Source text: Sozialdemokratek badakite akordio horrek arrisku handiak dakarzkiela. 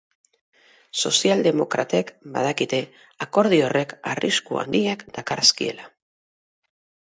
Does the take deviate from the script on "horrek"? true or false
false